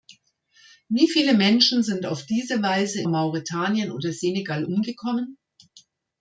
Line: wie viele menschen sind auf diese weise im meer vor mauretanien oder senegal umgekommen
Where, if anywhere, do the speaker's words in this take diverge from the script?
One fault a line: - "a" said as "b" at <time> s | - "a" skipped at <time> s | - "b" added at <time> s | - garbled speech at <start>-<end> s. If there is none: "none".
- "im meer vor" skipped at 3.0 s